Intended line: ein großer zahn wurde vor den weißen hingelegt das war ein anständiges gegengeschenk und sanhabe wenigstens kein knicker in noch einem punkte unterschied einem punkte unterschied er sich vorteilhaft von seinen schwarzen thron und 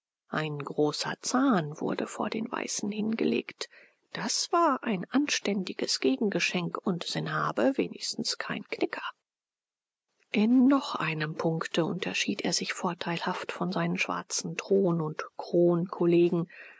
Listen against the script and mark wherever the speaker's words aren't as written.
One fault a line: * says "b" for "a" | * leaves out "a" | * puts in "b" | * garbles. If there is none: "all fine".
* leaves out "einem punkte unterschied"